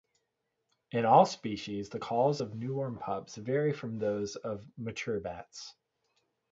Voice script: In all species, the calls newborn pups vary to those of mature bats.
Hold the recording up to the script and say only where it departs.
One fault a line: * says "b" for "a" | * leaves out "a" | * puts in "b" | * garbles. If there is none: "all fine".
* puts in "of"
* says "from" for "to"